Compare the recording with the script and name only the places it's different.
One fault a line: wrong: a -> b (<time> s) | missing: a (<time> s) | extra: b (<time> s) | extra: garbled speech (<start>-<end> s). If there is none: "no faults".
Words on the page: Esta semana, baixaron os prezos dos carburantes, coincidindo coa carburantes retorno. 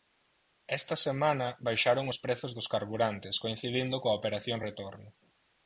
wrong: carburantes -> operación (4.2 s)